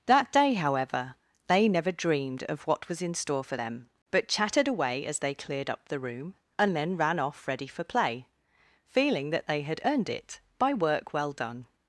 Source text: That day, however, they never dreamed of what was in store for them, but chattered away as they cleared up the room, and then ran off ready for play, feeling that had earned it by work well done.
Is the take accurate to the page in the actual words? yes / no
no